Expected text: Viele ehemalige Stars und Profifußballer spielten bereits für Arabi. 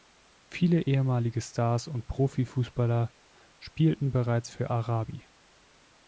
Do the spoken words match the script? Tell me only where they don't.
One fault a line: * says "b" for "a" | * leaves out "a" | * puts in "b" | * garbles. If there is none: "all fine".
all fine